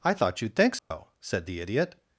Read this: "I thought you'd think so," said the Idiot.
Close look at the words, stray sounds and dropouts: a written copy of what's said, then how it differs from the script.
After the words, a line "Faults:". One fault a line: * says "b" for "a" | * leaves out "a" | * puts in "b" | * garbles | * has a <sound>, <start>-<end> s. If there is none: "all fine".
"I thought you'd think so," said the Idiot.
Faults:
* has a dropout, 0.8-0.9 s